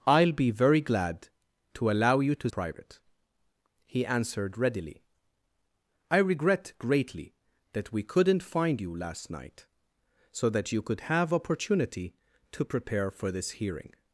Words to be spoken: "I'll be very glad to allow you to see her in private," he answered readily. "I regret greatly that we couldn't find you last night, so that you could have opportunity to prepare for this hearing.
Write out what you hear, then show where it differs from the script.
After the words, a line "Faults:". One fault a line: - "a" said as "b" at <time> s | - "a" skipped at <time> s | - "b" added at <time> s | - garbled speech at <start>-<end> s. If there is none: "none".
"I'll be very glad to allow you to private," he answered readily. "I regret greatly that we couldn't find you last night, so that you could have opportunity to prepare for this hearing.
Faults:
- "see her in" skipped at 2.5 s